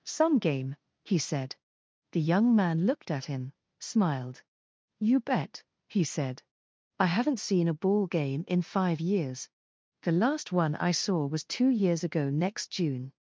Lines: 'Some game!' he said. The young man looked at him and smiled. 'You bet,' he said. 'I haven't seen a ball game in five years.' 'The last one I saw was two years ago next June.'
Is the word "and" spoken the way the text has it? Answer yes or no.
no